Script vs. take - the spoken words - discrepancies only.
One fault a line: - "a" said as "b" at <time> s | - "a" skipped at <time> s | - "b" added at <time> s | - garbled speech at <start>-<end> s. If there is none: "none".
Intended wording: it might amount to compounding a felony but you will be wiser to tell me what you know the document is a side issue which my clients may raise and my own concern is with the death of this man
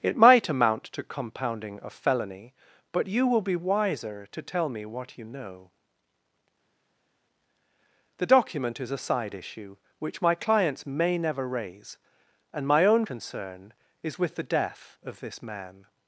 - "never" added at 11.2 s